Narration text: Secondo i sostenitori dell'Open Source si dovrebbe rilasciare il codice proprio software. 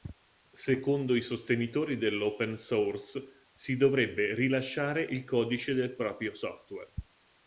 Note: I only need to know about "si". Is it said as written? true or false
true